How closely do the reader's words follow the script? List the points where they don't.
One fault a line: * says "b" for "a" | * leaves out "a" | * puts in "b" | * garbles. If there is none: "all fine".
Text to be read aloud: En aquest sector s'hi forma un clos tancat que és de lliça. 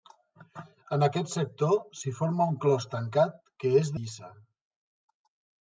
* leaves out "de"